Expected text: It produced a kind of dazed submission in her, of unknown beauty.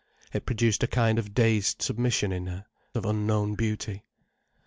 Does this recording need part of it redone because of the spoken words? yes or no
no